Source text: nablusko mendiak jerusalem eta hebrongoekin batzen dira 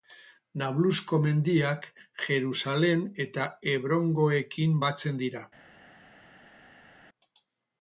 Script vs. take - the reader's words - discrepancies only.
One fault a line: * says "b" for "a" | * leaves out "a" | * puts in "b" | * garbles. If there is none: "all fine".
all fine